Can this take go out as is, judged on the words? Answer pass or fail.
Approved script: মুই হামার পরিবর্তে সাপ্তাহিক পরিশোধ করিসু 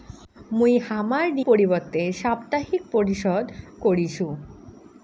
pass